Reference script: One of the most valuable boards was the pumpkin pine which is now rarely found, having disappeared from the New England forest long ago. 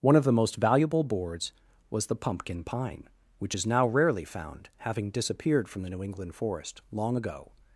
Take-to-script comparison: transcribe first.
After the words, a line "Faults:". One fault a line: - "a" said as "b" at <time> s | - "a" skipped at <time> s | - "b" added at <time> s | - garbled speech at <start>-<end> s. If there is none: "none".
One of the most valuable boards was the pumpkin pine which is now rarely found, having disappeared from the New England forest long ago.
Faults:
none